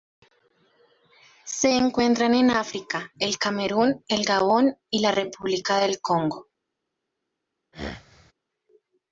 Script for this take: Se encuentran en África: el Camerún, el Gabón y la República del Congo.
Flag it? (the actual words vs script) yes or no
no